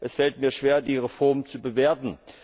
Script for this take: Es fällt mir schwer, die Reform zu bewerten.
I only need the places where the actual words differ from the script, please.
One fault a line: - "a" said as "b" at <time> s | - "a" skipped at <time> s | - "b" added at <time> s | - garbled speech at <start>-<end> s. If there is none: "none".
none